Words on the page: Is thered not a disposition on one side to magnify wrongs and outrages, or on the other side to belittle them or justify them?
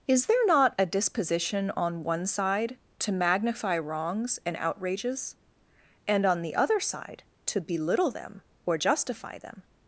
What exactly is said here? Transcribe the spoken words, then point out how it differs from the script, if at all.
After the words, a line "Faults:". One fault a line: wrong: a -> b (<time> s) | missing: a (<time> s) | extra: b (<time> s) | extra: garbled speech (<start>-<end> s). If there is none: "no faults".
Is there not a disposition on one side to magnify wrongs and outrages, and on the other side to belittle them or justify them?
Faults:
wrong: thered -> there (0.2 s)
wrong: or -> and (6.1 s)